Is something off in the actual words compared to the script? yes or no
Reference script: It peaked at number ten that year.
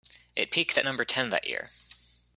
no